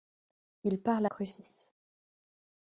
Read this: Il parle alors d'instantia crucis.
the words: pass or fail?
fail